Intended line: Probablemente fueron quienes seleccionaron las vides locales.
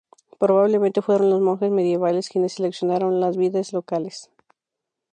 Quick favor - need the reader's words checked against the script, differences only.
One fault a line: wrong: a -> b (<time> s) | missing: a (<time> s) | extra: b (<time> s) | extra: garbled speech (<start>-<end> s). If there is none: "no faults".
extra: los monjes medievales (1.3 s)